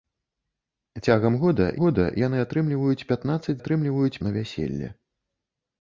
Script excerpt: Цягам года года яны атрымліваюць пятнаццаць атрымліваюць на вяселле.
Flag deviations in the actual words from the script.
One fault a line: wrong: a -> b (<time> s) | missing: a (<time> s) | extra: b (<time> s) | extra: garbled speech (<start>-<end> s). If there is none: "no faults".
no faults